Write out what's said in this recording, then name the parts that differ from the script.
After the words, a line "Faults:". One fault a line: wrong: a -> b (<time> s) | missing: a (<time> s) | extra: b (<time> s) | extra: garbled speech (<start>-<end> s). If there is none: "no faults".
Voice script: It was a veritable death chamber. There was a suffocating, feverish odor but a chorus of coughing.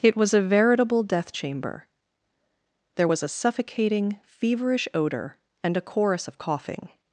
It was a veritable death chamber. There was a suffocating, feverish odor and a chorus of coughing.
Faults:
wrong: but -> and (5.6 s)